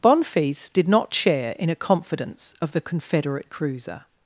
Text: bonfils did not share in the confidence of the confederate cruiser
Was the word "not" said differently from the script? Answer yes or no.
no